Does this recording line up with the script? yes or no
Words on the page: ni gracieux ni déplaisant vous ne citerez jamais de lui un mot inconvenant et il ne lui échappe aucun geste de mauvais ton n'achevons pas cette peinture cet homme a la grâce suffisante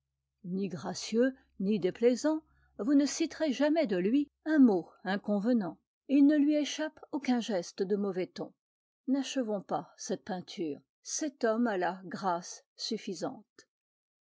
yes